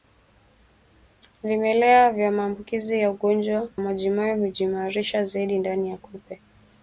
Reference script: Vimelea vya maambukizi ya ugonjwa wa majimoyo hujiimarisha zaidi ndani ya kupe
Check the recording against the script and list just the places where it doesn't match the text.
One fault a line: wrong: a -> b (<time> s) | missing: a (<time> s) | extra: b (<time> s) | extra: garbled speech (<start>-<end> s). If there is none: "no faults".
missing: wa (3.7 s)